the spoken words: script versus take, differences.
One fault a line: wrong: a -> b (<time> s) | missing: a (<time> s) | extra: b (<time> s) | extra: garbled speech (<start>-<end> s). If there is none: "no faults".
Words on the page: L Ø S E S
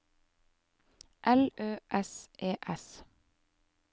no faults